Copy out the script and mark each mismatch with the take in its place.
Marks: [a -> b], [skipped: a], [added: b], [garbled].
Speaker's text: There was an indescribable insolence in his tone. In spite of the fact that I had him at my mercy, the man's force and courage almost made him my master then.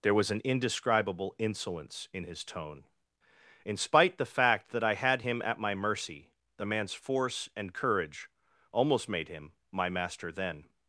There was an indescribable insolence in his tone. In spite [skipped: of] the fact that I had him at my mercy, the man's force and courage almost made him my master then.